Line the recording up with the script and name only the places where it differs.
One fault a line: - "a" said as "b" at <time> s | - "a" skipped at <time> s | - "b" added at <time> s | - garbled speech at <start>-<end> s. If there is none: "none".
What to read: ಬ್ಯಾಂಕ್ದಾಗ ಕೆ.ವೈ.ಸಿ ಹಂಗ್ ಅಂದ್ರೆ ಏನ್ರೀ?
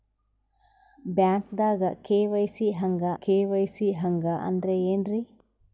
- "ಕೆ.ವೈ.ಸಿ ಹಂಗ್" added at 3.2 s